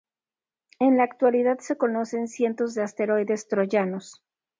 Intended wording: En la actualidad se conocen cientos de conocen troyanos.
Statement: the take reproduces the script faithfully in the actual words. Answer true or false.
false